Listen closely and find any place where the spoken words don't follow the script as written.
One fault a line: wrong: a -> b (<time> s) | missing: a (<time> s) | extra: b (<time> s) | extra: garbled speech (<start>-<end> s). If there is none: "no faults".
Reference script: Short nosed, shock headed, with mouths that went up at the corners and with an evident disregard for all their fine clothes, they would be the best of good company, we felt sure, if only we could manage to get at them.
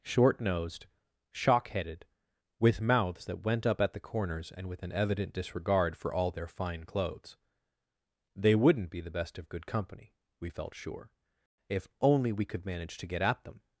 wrong: would -> wouldn't (8.6 s)